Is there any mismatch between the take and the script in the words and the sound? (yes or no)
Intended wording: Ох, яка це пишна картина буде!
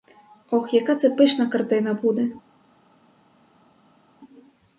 no